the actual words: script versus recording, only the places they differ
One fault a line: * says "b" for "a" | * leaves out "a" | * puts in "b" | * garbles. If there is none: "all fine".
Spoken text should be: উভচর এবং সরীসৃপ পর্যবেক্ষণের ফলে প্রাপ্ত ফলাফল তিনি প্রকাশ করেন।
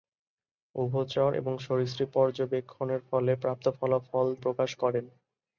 * leaves out "তিনি"